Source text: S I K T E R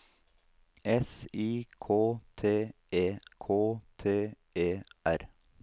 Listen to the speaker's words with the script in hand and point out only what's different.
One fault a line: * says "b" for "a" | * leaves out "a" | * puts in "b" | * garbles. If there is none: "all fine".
* puts in "K T E"